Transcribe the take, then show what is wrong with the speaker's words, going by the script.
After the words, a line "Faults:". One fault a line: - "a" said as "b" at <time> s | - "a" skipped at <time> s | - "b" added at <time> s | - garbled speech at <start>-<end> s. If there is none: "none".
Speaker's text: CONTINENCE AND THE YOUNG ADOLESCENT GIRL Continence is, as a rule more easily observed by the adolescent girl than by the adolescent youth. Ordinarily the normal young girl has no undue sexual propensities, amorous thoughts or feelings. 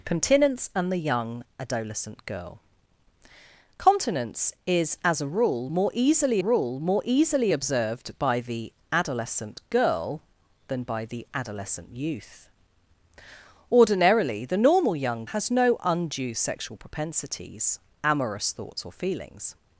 CONTINENCE AND THE YOUNG ADOLESCENT GIRL Continence is, as a rule more easily rule more easily observed by the adolescent girl than by the adolescent youth. Ordinarily the normal young has no undue sexual propensities, amorous thoughts or feelings.
Faults:
- "rule more easily" added at 6.4 s
- "girl" skipped at 15.2 s